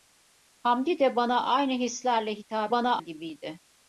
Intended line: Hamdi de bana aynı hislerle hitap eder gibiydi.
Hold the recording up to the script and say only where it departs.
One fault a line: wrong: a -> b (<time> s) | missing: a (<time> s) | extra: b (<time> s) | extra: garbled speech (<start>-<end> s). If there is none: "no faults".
wrong: eder -> bana (2.7 s)